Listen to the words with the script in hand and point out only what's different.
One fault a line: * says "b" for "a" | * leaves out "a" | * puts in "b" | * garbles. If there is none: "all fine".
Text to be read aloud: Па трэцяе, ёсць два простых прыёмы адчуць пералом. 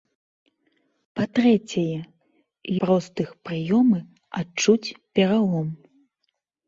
* leaves out "ёсць два"